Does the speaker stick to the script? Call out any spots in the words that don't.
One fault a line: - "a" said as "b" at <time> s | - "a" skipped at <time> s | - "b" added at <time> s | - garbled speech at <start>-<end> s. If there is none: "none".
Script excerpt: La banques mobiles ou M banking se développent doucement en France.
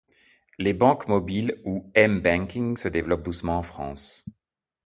- "La" said as "Les" at 0.6 s